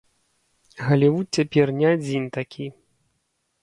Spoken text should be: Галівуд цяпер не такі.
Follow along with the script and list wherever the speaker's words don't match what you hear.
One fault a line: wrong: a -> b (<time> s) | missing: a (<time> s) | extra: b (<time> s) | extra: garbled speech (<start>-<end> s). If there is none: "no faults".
extra: адзін (1.9 s)